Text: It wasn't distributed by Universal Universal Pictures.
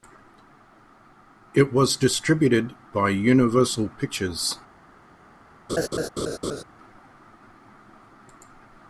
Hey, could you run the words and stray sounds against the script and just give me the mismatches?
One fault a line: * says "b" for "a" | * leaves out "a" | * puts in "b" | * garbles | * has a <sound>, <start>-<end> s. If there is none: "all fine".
* says "was" for "wasn't"
* leaves out "Universal"
* has a laugh, 5.7-6.6 s